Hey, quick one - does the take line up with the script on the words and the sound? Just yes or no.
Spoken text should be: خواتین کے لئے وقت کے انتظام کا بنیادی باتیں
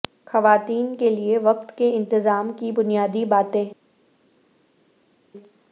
no